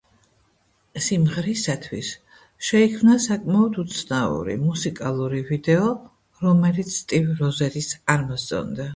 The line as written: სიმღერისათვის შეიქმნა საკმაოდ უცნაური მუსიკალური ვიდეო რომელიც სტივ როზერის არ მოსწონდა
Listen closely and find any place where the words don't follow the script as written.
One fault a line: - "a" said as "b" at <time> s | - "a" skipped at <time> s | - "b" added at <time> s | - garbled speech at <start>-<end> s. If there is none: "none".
none